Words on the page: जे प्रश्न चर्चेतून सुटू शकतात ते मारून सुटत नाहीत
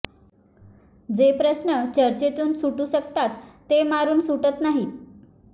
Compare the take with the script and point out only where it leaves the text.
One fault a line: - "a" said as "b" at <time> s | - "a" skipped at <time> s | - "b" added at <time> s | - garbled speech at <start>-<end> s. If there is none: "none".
none